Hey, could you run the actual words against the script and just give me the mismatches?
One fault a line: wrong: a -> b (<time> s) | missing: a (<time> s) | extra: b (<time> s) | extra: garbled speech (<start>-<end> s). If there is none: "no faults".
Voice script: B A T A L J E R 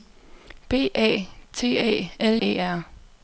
missing: J (2.4 s)